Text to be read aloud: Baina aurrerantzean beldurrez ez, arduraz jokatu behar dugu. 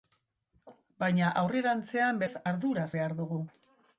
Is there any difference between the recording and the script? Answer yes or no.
yes